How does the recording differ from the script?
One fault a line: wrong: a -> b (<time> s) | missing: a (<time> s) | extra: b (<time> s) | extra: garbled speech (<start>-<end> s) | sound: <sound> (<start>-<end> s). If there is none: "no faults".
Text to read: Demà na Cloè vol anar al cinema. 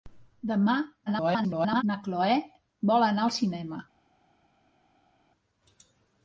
extra: garbled speech (1.1-1.8 s)